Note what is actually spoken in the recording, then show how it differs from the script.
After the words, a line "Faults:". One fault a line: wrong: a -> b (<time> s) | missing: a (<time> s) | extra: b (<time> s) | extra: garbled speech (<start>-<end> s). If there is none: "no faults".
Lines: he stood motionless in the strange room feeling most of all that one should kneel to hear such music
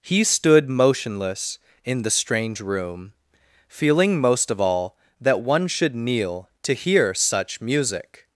he stood motionless in the strange room feeling most of all that one should kneel to hear such music
Faults:
no faults